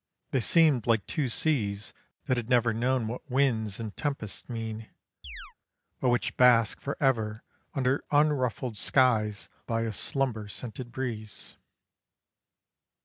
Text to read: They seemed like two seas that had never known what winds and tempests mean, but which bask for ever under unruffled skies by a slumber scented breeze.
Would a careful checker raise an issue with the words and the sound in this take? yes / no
yes